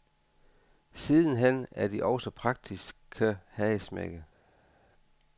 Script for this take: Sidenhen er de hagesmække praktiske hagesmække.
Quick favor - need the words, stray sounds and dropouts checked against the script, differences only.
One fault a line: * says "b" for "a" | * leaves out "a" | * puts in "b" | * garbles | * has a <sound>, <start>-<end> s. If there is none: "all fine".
* says "også" for "hagesmække"